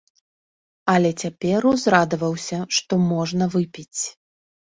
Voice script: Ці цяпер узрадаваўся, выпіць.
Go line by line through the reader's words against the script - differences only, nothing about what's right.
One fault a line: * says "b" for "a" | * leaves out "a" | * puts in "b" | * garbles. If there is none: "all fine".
* says "Але" for "Ці"
* puts in "што можна"